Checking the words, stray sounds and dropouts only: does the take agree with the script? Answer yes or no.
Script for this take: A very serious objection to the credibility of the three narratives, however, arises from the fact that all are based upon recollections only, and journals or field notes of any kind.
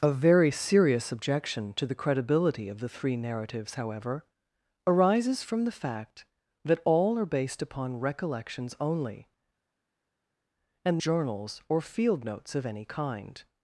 yes